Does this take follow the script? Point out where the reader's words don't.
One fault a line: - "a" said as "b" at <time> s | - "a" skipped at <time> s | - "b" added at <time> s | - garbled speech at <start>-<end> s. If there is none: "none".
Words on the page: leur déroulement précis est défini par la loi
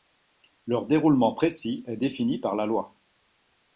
none